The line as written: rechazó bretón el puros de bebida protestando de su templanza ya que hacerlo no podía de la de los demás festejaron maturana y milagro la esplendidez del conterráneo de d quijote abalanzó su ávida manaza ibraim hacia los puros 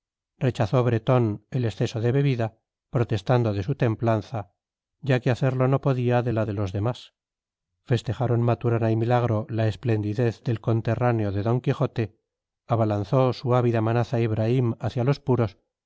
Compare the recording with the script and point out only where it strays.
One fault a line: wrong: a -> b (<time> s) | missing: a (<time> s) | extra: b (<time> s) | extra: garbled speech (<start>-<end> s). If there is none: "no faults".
wrong: puros -> exceso (1.6 s)